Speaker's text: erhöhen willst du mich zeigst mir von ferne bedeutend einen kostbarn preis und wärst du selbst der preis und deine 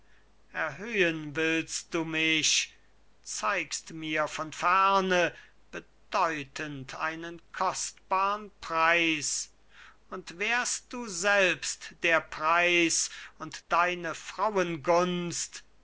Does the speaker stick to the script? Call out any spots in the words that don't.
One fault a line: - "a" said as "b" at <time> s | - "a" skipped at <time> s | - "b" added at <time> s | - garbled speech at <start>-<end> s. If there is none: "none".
none